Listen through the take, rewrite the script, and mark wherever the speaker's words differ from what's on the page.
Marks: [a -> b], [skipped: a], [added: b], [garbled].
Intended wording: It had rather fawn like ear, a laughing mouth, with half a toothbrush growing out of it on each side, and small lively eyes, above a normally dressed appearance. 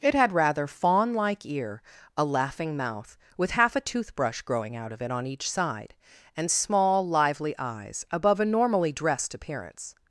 It had rather fawn like ear, a laughing mouth, with half a toothbrush growing out of it on each side, and small lively eyes, above a normally dressed appearance.